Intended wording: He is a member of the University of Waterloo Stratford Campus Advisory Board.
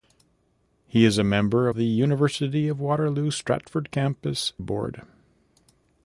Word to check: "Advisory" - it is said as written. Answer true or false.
false